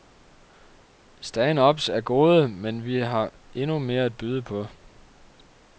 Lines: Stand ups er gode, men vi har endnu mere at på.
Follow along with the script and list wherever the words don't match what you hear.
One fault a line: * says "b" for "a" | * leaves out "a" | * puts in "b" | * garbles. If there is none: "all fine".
* puts in "byde"